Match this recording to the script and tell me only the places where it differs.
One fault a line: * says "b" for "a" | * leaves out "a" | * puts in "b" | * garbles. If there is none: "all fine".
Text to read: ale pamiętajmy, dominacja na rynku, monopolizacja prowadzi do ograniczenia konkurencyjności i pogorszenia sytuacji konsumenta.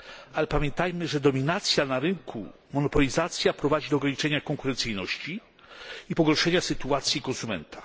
* puts in "że"